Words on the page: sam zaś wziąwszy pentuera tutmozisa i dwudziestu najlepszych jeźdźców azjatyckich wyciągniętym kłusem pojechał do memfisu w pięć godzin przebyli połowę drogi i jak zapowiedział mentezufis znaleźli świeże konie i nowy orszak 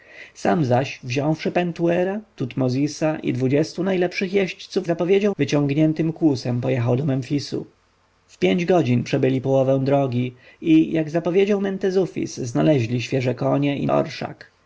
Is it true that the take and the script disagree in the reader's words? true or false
true